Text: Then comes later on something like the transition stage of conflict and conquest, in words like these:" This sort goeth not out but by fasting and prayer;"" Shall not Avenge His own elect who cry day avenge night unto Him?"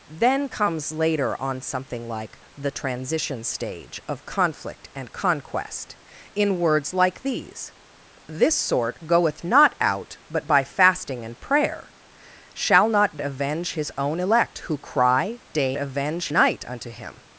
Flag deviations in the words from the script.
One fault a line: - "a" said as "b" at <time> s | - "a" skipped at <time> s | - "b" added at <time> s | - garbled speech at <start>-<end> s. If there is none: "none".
none